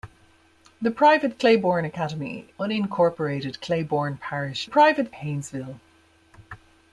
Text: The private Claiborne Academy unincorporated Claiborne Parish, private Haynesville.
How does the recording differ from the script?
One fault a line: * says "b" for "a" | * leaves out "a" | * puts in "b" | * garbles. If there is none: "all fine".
all fine